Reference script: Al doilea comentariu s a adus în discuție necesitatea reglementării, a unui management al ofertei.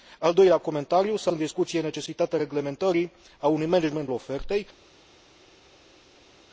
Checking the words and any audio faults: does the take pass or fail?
fail